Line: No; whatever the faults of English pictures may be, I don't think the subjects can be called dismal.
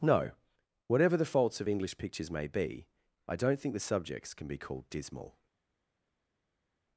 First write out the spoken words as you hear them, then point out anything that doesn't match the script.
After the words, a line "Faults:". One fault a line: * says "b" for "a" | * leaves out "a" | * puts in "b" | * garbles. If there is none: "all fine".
No; whatever the faults of English pictures may be, I don't think the subjects can be called dismal.
Faults:
all fine